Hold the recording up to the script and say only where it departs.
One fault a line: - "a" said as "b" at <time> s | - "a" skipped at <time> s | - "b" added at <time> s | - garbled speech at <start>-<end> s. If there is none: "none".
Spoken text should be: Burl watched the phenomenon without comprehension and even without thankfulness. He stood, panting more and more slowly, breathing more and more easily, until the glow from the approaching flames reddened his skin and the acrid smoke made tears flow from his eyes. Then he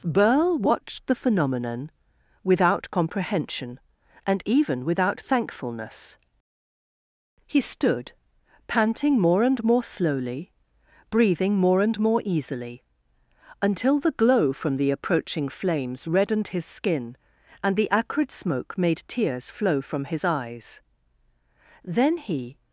none